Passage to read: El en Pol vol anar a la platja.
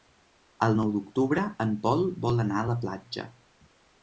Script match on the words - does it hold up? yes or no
no